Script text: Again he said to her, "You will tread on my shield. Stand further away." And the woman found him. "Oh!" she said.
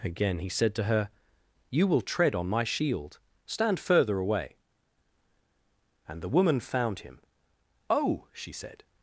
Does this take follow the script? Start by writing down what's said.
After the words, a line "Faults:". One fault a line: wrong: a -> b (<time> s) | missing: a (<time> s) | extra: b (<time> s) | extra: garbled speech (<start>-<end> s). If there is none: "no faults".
Again he said to her, "You will tread on my shield. Stand further away." And the woman found him. "Oh!" she said.
Faults:
no faults